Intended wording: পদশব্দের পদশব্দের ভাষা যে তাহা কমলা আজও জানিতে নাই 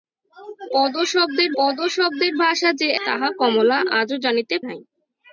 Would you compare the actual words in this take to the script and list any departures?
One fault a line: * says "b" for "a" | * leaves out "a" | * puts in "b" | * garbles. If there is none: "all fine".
all fine